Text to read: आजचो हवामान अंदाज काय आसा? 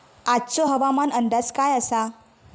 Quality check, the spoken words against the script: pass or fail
pass